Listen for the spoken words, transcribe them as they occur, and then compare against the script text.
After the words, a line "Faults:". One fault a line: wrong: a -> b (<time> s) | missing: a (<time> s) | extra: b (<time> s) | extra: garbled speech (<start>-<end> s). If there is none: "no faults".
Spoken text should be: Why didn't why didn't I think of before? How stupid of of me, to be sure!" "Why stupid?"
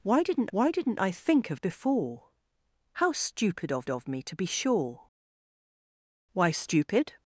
Why didn't why didn't I think of before? How stupid of of me, to be sure!" "Why stupid?"
Faults:
no faults